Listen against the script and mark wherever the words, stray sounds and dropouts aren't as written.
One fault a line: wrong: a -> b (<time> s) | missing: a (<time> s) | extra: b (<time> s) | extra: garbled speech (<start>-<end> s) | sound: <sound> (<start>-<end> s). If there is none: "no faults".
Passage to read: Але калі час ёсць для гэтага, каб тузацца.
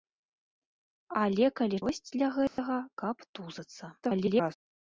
missing: час (1.8 s)
sound: dropout (2.5-2.6 s)
extra: garbled speech (4.0-4.6 s)